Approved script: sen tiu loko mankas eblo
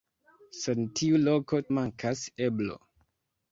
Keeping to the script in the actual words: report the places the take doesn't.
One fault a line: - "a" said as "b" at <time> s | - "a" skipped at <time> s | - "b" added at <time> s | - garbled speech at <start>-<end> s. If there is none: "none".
none